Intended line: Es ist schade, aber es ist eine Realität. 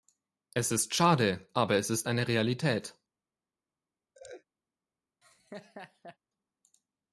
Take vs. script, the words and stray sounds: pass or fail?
fail